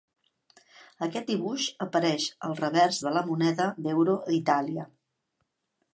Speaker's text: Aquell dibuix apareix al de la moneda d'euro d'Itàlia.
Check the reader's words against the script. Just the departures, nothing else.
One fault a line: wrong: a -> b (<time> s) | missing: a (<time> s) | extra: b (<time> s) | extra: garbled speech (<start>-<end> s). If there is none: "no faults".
wrong: Aquell -> Aquest (1.1 s)
extra: revers (2.6 s)